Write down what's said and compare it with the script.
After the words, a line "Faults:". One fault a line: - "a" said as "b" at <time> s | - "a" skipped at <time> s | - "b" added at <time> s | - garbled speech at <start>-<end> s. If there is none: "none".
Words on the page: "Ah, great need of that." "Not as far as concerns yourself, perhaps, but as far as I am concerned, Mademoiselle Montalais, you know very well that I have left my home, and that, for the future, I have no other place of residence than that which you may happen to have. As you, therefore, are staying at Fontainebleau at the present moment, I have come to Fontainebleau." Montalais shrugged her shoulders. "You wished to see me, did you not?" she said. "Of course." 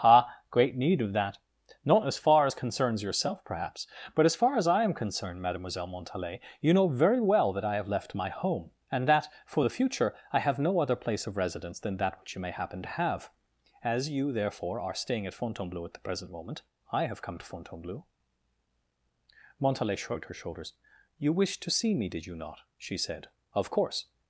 "Ah, great need of that." "Not as far as concerns yourself, perhaps, but as far as I am concerned, Mademoiselle Montalais, you know very well that I have left my home, and that, for the future, I have no other place of residence than that which you may happen to have. As you, therefore, are staying at Fontainebleau at the present moment, I have come to Fontainebleau." Montalais shrugged her shoulders. "You wished to see me, did you not?" she said. "Of course."
Faults:
none